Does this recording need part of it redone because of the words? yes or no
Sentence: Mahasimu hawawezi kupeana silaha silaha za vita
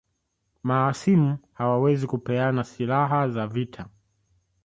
yes